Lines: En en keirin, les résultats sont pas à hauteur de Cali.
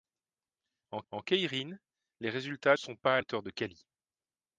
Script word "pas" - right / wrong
right